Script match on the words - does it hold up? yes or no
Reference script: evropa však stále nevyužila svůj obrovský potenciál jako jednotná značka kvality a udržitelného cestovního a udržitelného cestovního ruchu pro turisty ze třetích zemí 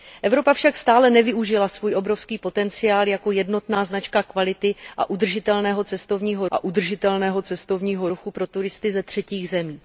yes